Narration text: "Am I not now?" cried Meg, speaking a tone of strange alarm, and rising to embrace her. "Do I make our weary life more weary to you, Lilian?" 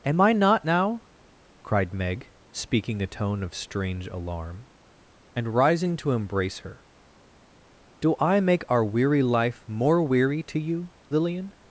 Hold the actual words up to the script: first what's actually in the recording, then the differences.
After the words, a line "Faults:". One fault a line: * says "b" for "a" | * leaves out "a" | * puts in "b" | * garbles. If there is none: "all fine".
"Am I not now?" cried Meg, speaking a tone of strange alarm, and rising to embrace her. "Do I make our weary life more weary to you, Lilian?"
Faults:
all fine